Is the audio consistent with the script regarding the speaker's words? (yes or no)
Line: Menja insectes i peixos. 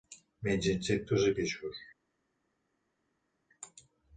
yes